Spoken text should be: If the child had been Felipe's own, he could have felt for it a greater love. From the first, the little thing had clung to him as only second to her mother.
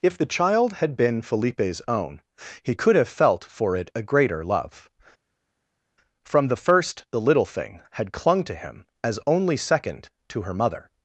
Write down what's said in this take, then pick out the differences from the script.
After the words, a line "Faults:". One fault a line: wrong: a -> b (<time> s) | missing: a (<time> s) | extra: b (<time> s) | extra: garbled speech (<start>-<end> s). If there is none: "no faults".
If the child had been Felipe's own, he could have felt for it a greater love. From the first, the little thing had clung to him as only second to her mother.
Faults:
no faults